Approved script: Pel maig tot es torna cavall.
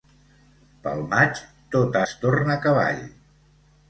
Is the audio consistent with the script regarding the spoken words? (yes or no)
yes